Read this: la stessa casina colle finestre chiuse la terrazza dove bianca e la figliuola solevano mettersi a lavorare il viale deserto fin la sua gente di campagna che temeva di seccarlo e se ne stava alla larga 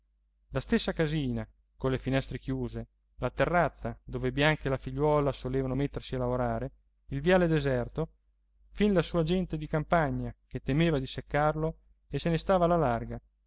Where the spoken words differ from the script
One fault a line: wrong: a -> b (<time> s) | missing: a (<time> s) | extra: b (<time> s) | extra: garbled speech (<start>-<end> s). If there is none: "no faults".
no faults